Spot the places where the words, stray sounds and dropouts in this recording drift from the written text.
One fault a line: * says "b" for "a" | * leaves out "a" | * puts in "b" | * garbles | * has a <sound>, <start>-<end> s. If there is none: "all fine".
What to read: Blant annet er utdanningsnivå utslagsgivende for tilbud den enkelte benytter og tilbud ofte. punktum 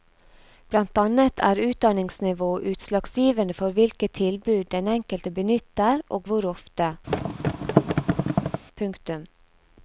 * puts in "hvilke"
* says "hvor" for "tilbud"
* has a thud, 7.1-8.6 s